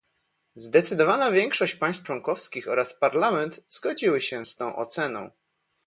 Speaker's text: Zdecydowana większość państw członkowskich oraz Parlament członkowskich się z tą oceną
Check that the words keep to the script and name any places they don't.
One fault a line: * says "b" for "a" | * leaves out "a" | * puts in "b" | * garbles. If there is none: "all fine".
* says "zgodziły" for "członkowskich"